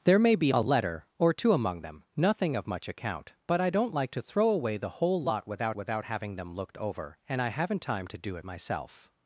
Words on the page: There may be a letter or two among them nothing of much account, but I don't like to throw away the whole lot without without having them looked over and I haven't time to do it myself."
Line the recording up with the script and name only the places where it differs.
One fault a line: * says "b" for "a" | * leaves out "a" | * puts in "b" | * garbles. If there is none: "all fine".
all fine